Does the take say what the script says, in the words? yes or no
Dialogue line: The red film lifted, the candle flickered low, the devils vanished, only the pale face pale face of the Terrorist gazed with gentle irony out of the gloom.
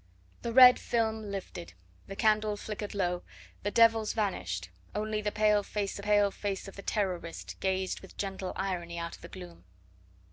yes